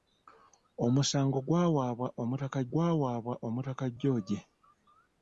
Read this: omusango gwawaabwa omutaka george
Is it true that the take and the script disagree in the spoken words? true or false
true